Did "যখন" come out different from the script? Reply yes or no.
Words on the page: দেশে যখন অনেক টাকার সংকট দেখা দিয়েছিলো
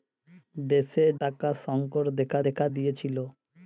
yes